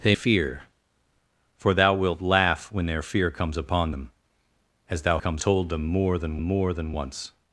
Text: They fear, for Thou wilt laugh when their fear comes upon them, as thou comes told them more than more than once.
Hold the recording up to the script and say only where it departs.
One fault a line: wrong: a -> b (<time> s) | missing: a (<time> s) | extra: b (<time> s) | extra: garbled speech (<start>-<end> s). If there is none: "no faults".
no faults